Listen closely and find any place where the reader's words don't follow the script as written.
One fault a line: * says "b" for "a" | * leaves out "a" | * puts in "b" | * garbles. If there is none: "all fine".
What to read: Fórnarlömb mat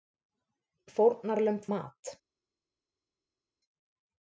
all fine